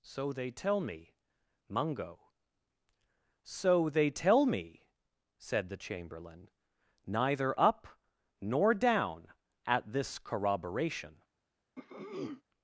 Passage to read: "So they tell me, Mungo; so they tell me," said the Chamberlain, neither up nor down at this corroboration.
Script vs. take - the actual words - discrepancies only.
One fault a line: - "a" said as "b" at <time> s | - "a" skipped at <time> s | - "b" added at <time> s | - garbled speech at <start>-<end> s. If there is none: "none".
none